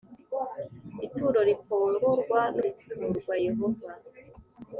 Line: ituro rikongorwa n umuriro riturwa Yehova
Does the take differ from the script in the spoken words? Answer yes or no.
yes